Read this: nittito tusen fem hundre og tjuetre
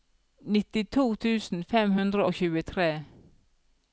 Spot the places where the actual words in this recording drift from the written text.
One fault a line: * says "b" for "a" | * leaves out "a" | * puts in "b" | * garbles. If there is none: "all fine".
all fine